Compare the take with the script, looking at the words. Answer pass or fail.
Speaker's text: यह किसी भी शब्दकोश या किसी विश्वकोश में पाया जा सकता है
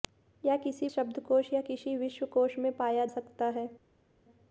fail